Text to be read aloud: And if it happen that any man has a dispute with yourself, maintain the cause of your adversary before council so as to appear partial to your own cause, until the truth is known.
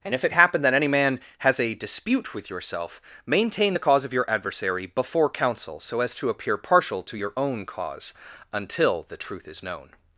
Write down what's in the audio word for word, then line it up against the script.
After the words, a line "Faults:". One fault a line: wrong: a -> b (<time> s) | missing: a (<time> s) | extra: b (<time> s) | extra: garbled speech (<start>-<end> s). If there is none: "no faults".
And if it happen that any man has a dispute with yourself, maintain the cause of your adversary before council so as to appear partial to your own cause, until the truth is known.
Faults:
no faults